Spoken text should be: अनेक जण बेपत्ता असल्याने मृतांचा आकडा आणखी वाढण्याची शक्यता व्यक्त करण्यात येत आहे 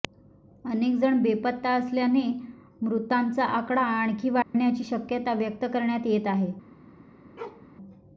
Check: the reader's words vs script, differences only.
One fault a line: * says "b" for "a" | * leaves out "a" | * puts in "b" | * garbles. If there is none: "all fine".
all fine